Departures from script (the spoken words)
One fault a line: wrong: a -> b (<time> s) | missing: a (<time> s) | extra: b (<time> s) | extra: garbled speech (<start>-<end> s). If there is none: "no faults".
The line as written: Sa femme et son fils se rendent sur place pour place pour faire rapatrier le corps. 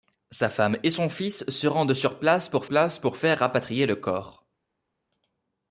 no faults